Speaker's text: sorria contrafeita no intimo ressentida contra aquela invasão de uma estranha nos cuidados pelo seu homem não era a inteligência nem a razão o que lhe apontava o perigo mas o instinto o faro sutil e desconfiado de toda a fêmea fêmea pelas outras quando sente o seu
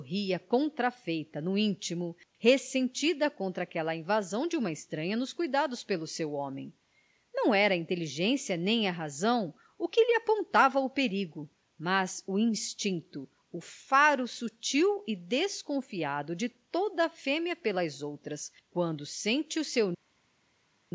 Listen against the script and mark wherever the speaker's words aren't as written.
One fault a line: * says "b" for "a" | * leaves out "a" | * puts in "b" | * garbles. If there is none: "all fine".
* leaves out "fêmea"